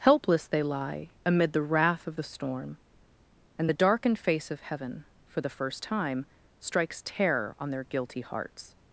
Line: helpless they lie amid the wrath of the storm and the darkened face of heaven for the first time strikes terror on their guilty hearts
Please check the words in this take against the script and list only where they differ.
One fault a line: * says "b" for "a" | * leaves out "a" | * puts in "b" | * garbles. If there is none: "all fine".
all fine